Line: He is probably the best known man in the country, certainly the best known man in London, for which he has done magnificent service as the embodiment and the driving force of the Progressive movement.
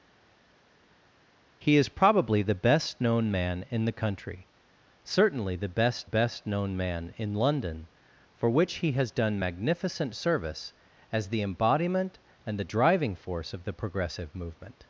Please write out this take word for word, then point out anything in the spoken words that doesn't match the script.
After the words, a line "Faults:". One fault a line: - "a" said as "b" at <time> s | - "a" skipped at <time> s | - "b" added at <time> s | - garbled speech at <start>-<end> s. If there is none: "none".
He is probably the best known man in the country, certainly the best best known man in London, for which he has done magnificent service as the embodiment and the driving force of the Progressive movement.
Faults:
- "best" added at 6.0 s